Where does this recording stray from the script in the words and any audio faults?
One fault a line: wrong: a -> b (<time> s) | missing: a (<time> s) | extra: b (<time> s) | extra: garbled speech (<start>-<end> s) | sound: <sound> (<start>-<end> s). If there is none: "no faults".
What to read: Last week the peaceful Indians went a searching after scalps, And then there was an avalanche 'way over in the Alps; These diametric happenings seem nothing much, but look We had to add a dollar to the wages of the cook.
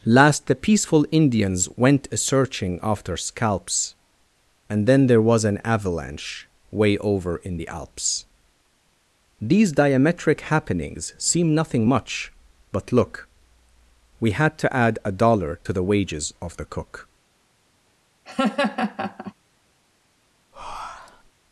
missing: week (0.5 s)
sound: laugh (18.3-19.3 s)
sound: breath (20.5-21.3 s)